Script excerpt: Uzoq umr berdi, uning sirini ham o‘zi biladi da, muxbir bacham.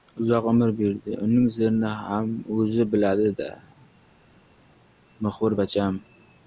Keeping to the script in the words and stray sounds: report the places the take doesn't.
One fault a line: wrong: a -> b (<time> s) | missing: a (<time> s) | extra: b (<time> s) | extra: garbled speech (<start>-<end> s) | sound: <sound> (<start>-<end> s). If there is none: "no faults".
no faults